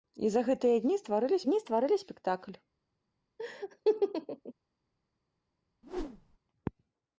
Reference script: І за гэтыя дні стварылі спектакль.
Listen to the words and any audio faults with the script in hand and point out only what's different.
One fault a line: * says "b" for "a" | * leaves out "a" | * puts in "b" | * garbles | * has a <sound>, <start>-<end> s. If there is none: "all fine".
* puts in "дні стварылі"
* has a laugh, 3.4-4.5 s
* has a whoosh, 5.8-6.4 s